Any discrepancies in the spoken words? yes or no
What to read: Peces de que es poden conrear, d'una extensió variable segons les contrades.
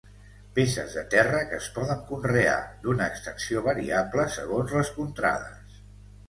yes